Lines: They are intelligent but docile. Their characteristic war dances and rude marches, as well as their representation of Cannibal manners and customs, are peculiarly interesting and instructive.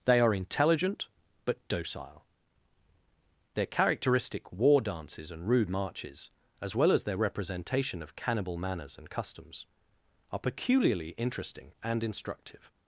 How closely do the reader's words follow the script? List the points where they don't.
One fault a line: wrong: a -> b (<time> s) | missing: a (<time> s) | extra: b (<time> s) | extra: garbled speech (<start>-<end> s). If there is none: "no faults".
no faults